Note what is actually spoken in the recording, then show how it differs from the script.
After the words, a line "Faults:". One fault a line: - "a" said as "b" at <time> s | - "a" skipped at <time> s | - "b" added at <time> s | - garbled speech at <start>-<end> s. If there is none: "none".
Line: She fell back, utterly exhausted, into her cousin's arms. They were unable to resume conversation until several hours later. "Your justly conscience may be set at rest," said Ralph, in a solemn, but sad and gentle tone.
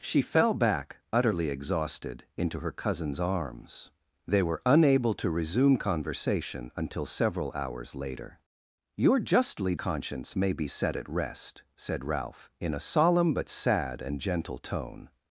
She fell back, utterly exhausted, into her cousin's arms. They were unable to resume conversation until several hours later. "Your justly conscience may be set at rest," said Ralph, in a solemn, but sad and gentle tone.
Faults:
none